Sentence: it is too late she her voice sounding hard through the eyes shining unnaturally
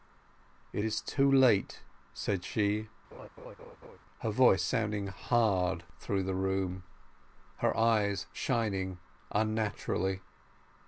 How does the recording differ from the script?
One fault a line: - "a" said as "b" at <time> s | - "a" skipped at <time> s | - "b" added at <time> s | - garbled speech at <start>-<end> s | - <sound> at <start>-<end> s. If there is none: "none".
- "said" added at 2.1 s
- laugh at 3.1-4.0 s
- "room her" added at 6.3 s